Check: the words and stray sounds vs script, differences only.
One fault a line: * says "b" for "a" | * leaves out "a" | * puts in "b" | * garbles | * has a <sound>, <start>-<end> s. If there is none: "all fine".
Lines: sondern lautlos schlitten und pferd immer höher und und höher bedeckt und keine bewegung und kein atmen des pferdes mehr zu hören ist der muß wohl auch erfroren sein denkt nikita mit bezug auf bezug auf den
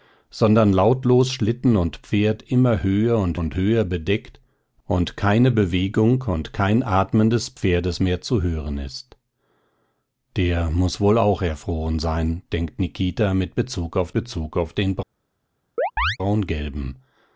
* has a chirp, 15.8-16.2 s